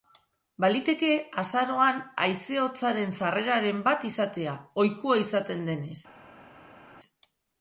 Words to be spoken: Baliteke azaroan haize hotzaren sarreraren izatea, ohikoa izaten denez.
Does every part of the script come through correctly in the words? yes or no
no